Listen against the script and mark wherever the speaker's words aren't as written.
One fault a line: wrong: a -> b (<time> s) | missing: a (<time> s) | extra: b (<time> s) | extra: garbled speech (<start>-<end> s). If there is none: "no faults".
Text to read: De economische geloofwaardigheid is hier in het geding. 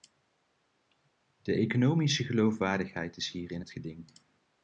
no faults